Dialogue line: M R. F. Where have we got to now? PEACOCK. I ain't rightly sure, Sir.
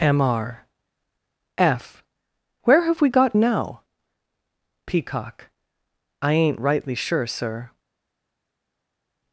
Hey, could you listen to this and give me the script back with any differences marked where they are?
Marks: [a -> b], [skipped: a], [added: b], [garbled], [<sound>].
M R. F. Where have we got [skipped: to] now? PEACOCK. I ain't rightly sure, Sir.